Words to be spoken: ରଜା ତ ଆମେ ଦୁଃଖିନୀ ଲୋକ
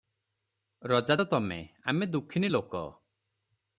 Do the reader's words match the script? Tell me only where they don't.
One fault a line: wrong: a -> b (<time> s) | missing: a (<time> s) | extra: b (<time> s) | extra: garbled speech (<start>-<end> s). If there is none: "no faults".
extra: ତମେ (1.3 s)